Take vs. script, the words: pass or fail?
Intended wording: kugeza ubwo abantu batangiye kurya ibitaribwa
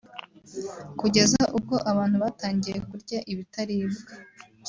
pass